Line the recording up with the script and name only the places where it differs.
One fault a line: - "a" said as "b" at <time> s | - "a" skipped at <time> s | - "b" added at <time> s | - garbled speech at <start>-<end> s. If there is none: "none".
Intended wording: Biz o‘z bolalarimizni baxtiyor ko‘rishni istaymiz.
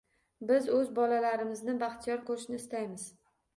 none